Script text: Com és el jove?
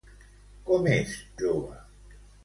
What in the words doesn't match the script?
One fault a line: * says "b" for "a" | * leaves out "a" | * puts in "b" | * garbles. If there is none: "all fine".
* leaves out "el"